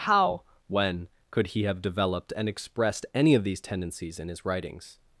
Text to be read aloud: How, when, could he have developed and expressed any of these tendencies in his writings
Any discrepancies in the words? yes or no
no